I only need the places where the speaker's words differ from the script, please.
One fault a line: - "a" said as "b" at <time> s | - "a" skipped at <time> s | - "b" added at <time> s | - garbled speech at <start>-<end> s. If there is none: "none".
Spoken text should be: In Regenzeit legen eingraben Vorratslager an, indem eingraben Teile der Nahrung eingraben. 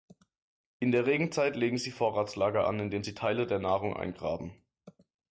- "der" added at 0.9 s
- "eingraben" said as "sie" at 1.8 s
- "eingraben" said as "sie" at 3.0 s